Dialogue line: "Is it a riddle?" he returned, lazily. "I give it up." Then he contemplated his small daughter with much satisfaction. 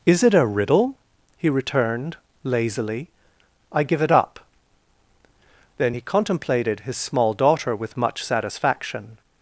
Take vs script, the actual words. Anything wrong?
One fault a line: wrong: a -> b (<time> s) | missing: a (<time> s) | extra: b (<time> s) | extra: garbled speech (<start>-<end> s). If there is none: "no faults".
no faults